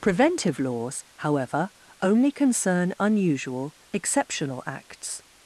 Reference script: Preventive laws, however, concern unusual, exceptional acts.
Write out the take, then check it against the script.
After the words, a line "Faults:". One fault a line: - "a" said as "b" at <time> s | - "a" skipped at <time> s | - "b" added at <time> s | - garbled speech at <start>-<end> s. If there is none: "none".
Preventive laws, however, only concern unusual, exceptional acts.
Faults:
- "only" added at 2.0 s